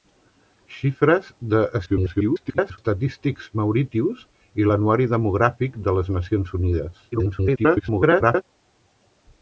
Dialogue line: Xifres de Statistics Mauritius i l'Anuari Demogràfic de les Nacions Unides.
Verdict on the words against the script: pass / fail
fail